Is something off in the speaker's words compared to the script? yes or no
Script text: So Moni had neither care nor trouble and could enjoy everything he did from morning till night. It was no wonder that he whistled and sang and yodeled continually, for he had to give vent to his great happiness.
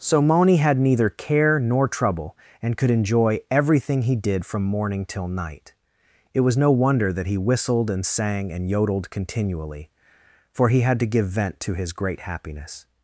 no